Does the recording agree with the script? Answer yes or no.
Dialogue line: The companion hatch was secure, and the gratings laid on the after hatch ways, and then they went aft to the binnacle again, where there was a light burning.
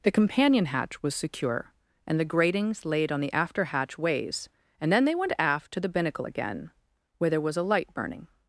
yes